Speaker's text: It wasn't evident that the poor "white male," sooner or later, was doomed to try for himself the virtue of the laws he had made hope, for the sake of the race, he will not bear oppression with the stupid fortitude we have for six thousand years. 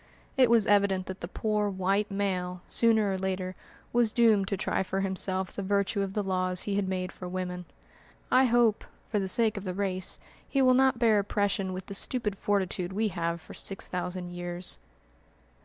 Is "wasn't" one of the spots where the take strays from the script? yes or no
yes